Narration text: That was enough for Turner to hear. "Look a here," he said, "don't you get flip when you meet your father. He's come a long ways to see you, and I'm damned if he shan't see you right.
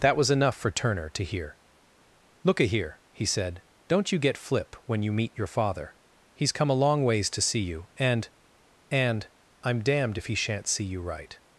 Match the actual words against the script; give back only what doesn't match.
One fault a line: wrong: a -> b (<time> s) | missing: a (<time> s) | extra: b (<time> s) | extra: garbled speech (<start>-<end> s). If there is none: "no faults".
extra: and (8.9 s)